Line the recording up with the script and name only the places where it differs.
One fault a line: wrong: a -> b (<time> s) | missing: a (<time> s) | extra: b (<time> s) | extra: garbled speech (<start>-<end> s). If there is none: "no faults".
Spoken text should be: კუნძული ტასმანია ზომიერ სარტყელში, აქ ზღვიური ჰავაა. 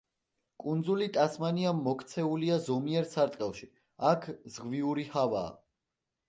extra: მოქცეულია (1.8 s)